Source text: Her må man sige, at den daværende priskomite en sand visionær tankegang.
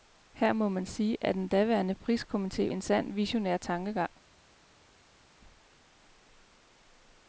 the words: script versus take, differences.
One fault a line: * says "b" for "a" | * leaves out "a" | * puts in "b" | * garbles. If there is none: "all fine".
all fine